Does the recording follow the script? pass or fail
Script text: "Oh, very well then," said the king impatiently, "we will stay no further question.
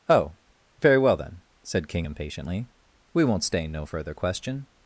fail